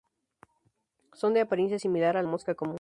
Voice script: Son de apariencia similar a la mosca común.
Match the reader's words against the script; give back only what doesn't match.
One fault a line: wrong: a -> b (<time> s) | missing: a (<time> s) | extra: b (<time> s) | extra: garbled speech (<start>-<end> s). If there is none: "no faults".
missing: la (2.2 s)